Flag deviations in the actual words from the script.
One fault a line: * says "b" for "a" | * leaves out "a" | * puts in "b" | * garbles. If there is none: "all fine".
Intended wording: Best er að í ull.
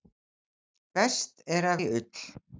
all fine